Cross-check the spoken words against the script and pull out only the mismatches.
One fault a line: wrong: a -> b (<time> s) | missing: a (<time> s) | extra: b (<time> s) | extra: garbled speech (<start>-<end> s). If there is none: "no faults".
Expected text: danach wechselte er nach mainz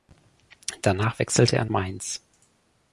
missing: nach (1.6 s)